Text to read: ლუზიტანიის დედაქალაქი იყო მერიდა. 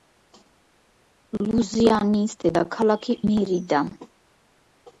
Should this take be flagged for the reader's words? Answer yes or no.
yes